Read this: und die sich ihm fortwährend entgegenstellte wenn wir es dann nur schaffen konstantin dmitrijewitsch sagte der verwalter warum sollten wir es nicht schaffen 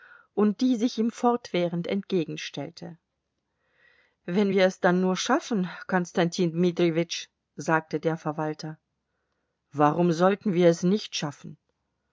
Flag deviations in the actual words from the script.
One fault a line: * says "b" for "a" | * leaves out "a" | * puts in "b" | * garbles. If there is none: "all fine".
all fine